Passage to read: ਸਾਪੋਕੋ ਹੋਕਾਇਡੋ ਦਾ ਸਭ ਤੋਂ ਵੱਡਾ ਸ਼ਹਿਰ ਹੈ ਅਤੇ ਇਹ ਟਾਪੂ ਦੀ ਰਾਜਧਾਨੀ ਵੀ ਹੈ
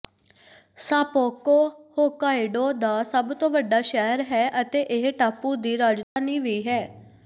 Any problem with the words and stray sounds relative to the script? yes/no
yes